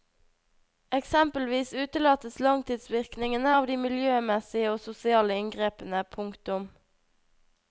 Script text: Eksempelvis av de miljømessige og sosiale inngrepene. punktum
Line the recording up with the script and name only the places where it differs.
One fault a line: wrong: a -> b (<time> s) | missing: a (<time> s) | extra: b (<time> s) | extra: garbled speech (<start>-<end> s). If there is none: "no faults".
extra: utelates langtidsvirkningene (1.8 s)